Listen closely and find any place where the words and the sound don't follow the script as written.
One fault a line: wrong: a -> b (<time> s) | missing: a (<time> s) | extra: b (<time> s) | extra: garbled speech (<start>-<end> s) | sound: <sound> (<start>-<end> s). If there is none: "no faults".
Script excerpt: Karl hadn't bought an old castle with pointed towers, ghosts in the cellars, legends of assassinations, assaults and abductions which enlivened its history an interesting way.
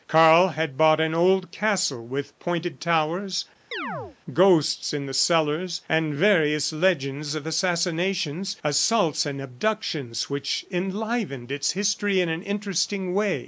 wrong: hadn't -> had (0.5 s)
sound: chirp (3.7-4.2 s)
extra: and various (5.9 s)
extra: in (12.2 s)